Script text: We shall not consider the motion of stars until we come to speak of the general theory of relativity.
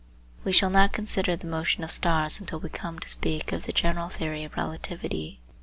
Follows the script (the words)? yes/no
yes